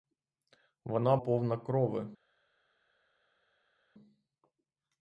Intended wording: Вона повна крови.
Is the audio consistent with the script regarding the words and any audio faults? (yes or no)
yes